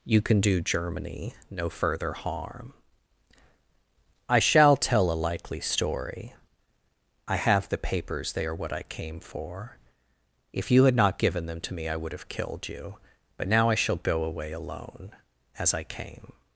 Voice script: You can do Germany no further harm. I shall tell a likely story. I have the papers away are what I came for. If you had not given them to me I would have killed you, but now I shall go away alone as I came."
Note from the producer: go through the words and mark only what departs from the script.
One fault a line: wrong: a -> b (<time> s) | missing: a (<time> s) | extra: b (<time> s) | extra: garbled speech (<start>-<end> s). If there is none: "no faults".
wrong: away -> they (8.3 s)